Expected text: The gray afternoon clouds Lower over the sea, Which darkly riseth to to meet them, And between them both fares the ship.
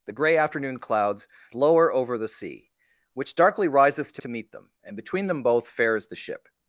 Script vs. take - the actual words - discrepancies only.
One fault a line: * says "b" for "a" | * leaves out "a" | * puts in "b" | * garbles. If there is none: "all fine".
all fine